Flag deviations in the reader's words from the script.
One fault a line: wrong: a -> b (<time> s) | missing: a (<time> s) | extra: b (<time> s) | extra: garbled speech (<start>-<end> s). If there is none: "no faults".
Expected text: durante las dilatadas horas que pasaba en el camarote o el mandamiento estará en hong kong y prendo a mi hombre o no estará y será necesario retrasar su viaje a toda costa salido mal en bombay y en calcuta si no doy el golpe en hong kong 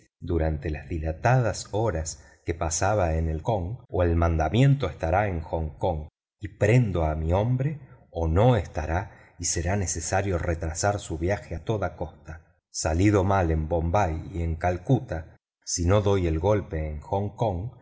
wrong: camarote -> kong (3.4 s)